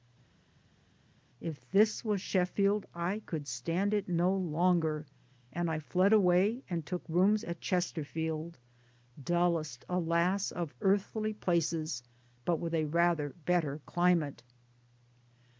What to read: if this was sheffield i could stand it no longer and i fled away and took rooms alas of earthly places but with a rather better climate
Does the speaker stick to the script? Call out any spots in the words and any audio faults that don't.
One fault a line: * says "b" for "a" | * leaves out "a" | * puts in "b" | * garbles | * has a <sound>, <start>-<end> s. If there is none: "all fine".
* puts in "at chesterfield dullest"